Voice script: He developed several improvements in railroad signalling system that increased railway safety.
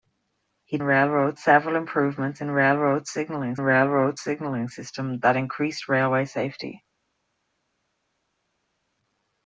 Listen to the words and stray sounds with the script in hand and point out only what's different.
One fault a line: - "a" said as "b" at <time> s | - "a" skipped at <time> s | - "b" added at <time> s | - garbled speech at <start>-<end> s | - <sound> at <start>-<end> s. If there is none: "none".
- "developed" said as "railroad" at 0.8 s
- "railroad signalling" added at 3.6 s